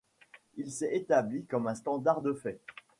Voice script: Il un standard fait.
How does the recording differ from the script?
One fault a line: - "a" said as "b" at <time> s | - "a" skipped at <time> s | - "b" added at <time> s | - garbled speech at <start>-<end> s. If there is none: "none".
- "s'est établi comme" added at 0.7 s
- "de" added at 2.2 s